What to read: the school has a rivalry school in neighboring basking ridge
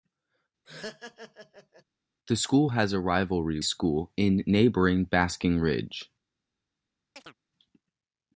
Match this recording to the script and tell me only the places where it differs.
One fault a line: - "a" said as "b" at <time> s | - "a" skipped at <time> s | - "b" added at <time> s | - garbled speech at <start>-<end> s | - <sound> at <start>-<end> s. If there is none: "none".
- laugh at 0.6-1.8 s
- chirp at 7.2-7.4 s